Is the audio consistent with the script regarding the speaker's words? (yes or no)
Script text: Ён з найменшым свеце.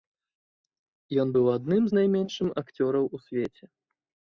no